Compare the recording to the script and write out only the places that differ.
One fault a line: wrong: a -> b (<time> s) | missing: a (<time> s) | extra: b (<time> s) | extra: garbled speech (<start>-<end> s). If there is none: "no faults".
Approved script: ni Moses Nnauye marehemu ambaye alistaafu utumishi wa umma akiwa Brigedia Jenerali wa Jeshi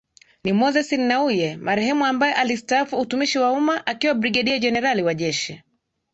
no faults